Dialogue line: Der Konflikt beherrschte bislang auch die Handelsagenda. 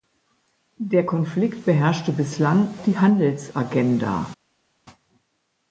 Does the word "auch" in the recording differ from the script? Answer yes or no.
yes